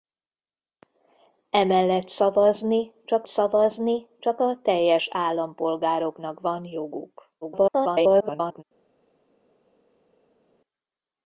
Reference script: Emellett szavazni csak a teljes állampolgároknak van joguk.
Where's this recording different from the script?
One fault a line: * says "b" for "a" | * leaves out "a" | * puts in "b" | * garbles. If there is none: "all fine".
* puts in "szavazni csak"
* garbles